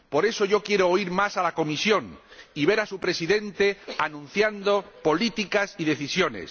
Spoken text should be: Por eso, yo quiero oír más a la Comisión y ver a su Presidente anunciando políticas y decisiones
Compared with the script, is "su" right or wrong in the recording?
right